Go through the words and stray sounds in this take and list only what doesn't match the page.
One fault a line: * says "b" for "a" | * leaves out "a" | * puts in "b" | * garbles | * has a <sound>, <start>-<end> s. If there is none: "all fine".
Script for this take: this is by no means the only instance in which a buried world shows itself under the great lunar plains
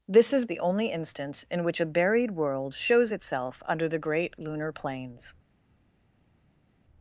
* leaves out "by no means"